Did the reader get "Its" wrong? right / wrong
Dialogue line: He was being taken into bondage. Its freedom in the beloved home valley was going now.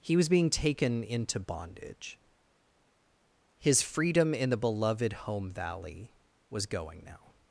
wrong